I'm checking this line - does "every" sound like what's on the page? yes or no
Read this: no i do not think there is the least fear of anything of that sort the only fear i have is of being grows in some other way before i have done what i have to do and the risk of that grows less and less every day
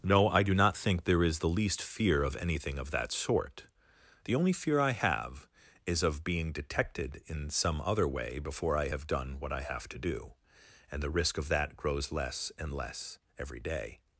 yes